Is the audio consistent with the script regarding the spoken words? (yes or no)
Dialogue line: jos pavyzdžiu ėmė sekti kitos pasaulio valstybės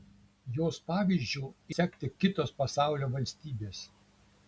no